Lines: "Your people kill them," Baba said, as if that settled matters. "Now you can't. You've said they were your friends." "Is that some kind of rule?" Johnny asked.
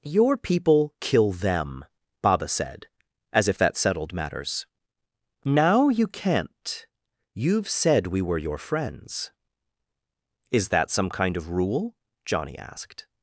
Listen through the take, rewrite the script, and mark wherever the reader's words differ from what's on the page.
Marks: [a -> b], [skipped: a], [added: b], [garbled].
"Your people kill them," Baba said, as if that settled matters. "Now you can't. You've said [they -> we] were your friends." "Is that some kind of rule?" Johnny asked.